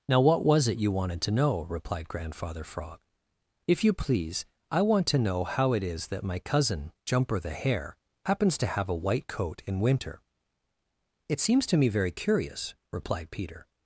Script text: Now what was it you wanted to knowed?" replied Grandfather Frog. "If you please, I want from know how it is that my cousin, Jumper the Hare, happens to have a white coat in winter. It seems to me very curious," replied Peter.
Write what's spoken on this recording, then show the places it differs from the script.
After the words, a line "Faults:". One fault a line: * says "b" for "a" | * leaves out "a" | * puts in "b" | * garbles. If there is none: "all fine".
Now what was it you wanted to know?" replied Grandfather Frog. "If you please, I want to know how it is that my cousin, Jumper the Hare, happens to have a white coat in winter. It seems to me very curious," replied Peter.
Faults:
* says "know" for "knowed"
* says "to" for "from"